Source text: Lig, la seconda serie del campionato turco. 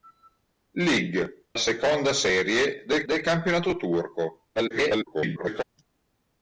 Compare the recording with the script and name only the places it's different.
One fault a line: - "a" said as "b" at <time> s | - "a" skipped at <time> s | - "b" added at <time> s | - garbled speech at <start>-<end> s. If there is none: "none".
- "la" skipped at 1.4 s
- "del" added at 3.0 s
- garbled speech at 4.6-5.6 s